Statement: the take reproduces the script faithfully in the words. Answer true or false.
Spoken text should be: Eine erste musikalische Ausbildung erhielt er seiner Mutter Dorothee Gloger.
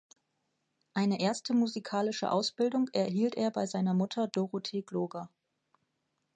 false